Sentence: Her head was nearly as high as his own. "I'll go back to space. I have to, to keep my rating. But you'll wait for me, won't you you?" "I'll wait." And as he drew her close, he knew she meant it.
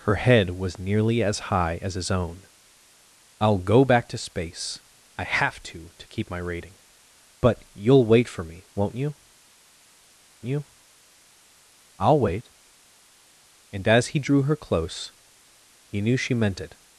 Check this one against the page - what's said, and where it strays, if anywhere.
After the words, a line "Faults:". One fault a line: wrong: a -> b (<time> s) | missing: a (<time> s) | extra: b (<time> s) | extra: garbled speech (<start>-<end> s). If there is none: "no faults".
Her head was nearly as high as his own. "I'll go back to space. I have to, to keep my rating. But you'll wait for me, won't you you?" "I'll wait." And as he drew her close, he knew she meant it.
Faults:
no faults